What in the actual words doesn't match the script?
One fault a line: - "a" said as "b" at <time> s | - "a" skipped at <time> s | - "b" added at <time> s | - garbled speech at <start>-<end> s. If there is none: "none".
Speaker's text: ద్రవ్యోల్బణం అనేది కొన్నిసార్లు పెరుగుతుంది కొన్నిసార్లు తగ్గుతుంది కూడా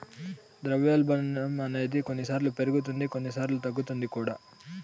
none